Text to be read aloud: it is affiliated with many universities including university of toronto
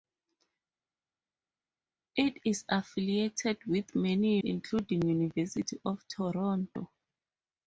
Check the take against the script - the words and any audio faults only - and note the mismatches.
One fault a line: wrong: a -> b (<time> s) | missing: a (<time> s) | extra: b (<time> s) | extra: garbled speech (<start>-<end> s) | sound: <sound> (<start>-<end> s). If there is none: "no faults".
missing: universities (4.4 s)